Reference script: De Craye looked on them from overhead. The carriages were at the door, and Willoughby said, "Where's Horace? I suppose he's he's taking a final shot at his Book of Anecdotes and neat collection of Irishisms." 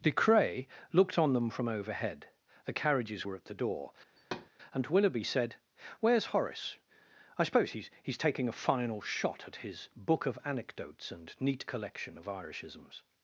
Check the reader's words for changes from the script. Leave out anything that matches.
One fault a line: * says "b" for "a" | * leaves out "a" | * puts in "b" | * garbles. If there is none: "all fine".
all fine